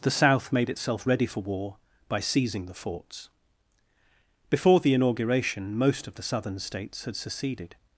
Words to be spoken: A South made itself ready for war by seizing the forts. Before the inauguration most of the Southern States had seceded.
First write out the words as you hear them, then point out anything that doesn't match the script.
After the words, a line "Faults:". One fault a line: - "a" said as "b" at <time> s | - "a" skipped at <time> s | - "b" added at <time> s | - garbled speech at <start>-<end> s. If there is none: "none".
The South made itself ready for war by seizing the forts. Before the inauguration most of the Southern States had seceded.
Faults:
- "A" said as "The" at 0.0 s